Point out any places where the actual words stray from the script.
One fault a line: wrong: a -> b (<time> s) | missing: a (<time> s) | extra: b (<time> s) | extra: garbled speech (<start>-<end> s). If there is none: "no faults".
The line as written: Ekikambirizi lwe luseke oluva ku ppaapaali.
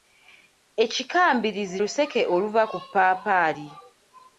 missing: lwe (1.8 s)